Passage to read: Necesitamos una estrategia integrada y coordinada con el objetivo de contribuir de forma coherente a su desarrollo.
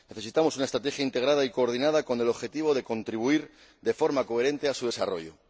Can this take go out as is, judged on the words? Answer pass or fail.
pass